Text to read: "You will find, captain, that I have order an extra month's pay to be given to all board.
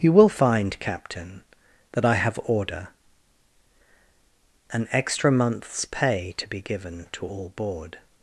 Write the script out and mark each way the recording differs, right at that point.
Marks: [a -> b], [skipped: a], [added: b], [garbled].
"You will find, captain, that I have order an extra month's pay to be given to all board.